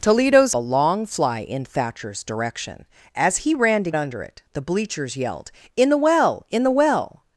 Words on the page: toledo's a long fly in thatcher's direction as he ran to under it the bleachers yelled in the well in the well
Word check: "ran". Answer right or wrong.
right